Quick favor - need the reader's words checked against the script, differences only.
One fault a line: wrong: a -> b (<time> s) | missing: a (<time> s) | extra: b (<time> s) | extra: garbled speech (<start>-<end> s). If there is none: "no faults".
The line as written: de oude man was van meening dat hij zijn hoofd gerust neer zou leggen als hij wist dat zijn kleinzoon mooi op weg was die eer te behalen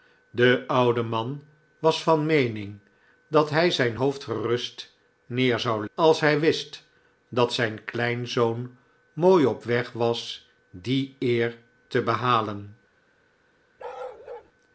missing: leggen (5.9 s)